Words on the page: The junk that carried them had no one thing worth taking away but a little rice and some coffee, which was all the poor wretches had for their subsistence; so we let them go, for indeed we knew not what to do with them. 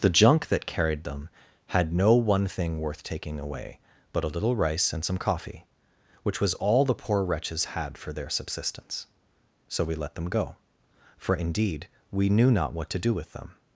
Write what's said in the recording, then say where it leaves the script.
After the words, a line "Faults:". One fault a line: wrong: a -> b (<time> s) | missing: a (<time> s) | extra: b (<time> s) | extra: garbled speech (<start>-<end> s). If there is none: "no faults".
The junk that carried them had no one thing worth taking away but a little rice and some coffee, which was all the poor wretches had for their subsistence; so we let them go, for indeed we knew not what to do with them.
Faults:
no faults